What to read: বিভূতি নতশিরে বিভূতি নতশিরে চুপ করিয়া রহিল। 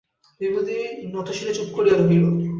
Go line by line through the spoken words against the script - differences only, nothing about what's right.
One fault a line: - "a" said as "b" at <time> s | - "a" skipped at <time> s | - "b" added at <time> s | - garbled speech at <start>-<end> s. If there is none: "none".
- "বিভূতি নতশিরে" skipped at 1.5 s